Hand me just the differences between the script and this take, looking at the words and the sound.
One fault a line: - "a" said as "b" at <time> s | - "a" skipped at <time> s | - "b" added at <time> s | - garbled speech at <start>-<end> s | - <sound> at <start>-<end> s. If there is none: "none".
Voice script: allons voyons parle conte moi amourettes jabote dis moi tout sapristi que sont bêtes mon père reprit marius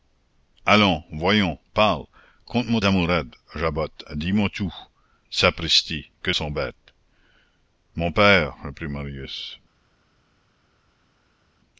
none